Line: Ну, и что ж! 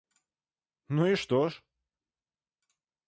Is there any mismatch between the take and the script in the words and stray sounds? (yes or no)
no